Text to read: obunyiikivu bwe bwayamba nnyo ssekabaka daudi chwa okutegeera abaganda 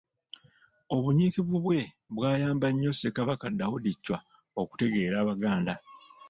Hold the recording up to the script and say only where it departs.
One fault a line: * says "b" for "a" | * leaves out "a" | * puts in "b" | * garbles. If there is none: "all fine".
all fine